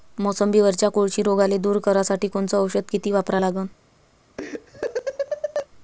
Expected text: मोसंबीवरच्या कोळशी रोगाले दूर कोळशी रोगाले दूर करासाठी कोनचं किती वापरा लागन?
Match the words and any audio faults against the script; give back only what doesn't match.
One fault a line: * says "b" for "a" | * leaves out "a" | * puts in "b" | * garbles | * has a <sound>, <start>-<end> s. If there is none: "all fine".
* leaves out "कोळशी रोगाले दूर"
* puts in "औषध"
* has a laugh, 4.4-5.7 s